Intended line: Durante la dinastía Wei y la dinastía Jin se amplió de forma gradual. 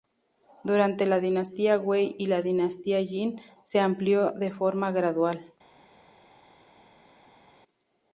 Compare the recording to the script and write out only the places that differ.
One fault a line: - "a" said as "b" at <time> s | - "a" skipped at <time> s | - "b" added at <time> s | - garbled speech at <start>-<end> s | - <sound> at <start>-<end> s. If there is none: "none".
none